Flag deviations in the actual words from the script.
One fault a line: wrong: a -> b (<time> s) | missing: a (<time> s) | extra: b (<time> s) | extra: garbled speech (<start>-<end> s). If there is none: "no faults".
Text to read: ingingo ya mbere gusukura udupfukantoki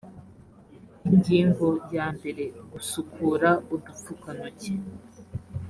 no faults